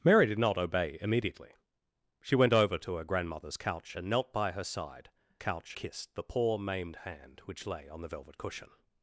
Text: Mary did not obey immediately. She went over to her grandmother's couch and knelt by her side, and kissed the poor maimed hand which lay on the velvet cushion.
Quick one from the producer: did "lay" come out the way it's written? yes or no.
yes